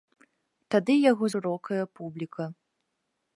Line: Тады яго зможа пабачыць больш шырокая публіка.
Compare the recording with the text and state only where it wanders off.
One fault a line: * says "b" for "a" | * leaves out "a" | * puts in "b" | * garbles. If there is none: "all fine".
* leaves out "зможа пабачыць больш"